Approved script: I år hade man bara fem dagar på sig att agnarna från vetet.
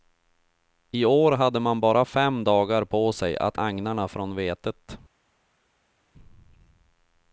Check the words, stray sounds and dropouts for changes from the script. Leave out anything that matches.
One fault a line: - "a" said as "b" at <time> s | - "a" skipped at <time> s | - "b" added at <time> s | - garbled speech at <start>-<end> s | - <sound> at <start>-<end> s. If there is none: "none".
none